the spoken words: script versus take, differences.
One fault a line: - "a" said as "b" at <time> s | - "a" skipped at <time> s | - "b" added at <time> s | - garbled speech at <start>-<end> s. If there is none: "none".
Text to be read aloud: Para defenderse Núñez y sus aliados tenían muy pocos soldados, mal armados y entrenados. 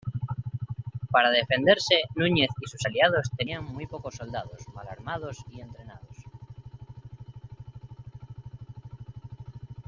none